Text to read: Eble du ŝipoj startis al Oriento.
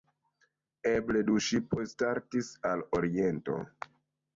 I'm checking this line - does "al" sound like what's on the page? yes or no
yes